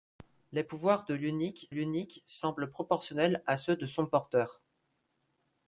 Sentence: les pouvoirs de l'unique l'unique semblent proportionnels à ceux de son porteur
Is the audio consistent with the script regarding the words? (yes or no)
yes